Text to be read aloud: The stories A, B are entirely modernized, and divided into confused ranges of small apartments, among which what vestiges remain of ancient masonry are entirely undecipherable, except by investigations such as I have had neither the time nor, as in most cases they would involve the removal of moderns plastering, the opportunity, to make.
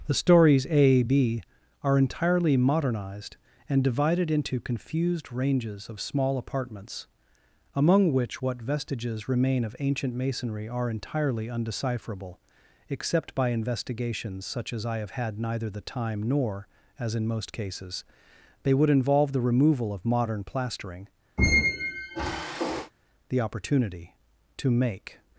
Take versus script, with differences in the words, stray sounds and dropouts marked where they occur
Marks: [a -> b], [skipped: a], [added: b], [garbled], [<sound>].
The stories A, B are entirely modernized, and divided into confused ranges of small apartments, among which what vestiges remain of ancient masonry are entirely undecipherable, except by investigations such as I have had neither the time nor, as in most cases they would involve the removal of [moderns -> modern] plastering, [squeak] the opportunity, to make.